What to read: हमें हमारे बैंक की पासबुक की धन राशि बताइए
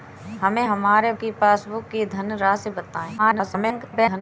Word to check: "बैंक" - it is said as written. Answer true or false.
false